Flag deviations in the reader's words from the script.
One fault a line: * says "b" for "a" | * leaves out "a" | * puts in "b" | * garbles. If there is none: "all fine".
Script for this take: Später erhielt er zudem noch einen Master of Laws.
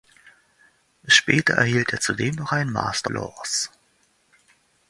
* leaves out "of"